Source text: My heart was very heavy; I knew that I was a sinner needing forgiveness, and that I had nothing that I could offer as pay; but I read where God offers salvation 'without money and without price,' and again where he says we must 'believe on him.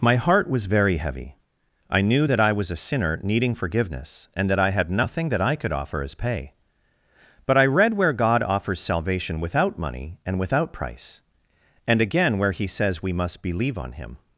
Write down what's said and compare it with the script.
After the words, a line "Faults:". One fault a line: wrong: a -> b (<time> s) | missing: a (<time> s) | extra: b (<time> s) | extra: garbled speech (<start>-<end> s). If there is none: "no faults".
My heart was very heavy; I knew that I was a sinner needing forgiveness, and that I had nothing that I could offer as pay; but I read where God offers salvation 'without money and without price,' and again where he says we must 'believe on him.
Faults:
no faults